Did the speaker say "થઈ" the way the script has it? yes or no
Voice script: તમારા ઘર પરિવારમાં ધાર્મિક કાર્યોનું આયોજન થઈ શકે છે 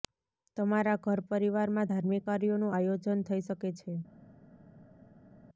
yes